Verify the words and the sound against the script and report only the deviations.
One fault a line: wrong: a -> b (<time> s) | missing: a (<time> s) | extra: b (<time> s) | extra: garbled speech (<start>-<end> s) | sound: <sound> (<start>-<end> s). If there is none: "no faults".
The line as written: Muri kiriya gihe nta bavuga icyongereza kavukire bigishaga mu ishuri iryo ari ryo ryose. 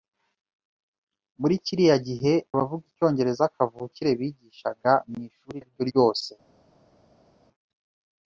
missing: nta (2.3 s)
missing: iryo (5.6 s)